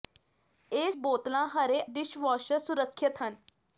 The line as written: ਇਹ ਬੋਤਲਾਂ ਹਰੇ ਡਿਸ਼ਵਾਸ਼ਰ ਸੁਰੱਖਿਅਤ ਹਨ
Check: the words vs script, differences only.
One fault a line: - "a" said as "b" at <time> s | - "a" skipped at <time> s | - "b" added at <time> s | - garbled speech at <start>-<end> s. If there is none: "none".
none